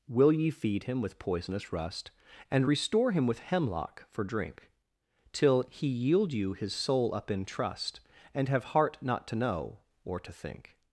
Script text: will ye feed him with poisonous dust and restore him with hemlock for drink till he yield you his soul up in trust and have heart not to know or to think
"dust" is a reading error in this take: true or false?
true